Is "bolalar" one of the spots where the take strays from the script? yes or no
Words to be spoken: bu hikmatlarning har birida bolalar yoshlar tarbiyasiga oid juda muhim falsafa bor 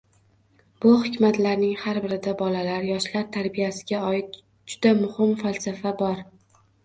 no